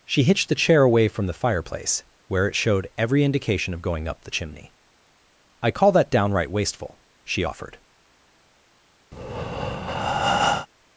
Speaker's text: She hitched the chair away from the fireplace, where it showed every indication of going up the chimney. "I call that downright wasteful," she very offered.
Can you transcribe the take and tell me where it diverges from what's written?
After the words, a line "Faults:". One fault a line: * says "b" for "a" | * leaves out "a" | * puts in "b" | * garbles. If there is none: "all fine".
She hitched the chair away from the fireplace, where it showed every indication of going up the chimney. "I call that downright wasteful," she offered.
Faults:
* leaves out "very"